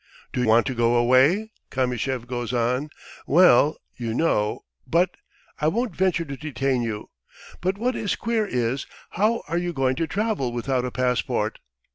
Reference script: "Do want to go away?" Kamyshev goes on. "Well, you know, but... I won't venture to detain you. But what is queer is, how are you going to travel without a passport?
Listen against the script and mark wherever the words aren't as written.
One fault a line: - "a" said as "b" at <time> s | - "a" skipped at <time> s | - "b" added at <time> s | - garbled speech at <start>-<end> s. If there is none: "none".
none